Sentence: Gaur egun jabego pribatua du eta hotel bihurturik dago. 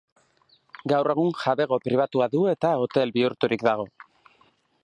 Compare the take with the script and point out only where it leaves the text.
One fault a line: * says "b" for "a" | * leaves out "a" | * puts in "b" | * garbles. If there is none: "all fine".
all fine